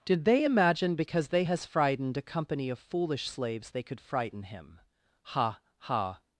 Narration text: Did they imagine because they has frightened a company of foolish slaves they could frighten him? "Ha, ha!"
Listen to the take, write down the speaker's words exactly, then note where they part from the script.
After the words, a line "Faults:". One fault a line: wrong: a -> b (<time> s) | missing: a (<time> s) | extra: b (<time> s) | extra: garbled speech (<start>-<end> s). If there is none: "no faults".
Did they imagine because they has frightened a company of foolish slaves they could frighten him? "Ha, ha!"
Faults:
no faults